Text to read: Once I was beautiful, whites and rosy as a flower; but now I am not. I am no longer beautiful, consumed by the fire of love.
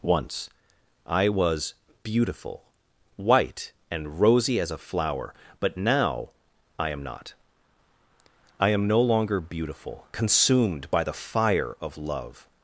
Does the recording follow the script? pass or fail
fail